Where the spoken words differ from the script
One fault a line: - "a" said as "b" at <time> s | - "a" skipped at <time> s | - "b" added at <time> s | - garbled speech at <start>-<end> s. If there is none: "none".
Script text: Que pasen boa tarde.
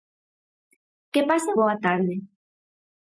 none